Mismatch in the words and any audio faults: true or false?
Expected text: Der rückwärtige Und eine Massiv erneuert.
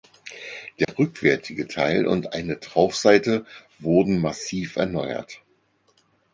true